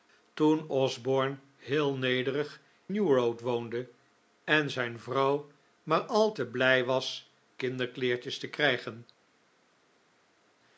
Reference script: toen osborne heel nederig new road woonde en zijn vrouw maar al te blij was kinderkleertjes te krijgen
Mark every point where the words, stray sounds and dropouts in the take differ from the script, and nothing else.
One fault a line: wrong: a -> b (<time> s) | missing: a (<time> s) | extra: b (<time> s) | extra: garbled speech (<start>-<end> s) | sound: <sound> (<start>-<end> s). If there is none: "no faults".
no faults